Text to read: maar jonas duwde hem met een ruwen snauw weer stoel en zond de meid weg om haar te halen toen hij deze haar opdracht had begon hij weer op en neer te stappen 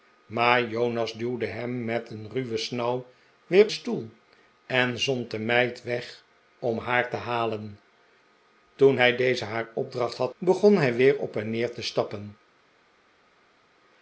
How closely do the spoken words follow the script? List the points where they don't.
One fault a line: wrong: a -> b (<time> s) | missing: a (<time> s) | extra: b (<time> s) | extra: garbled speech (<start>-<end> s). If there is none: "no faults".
no faults